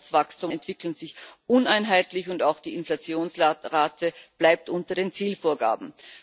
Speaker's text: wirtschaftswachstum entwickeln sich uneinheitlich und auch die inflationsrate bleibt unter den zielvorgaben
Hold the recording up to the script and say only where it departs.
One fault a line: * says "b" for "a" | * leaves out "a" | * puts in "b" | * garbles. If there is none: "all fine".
all fine